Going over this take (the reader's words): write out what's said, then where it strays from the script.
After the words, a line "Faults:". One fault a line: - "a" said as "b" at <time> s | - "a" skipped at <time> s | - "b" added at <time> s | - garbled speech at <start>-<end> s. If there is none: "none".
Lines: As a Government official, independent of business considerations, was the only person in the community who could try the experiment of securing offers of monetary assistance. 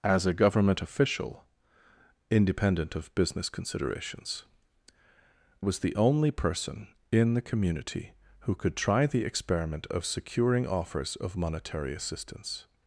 As a Government official, independent of business considerations, was the only person in the community who could try the experiment of securing offers of monetary assistance.
Faults:
none